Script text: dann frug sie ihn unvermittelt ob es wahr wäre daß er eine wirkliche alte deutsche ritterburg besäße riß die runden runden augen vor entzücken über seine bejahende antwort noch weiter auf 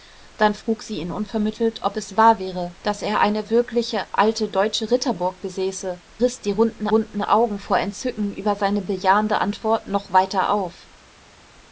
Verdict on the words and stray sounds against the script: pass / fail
pass